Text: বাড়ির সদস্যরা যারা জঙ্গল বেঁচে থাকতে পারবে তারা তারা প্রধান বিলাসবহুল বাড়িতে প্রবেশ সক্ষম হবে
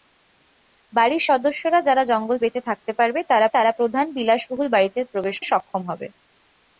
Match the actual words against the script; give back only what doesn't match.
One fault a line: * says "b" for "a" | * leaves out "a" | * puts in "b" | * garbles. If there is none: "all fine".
all fine